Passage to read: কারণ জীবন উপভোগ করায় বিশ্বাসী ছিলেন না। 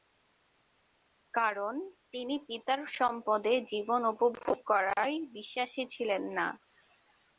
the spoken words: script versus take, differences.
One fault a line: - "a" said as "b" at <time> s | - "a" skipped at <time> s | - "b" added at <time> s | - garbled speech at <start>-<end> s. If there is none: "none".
- "তিনি পিতার সম্পদে" added at 2.1 s